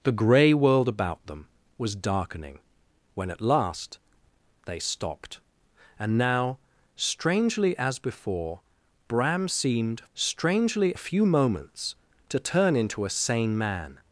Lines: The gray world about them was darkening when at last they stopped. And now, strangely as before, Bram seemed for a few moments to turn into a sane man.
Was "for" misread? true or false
true